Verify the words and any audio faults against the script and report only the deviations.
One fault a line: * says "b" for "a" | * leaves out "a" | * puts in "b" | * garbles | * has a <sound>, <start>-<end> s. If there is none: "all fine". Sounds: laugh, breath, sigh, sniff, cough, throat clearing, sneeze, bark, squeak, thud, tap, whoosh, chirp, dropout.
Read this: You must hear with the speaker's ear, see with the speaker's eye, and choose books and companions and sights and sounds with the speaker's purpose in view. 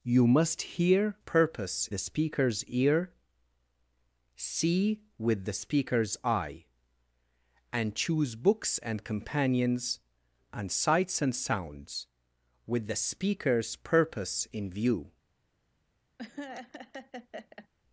* says "purpose" for "with"
* has a laugh, 16.2-17.7 s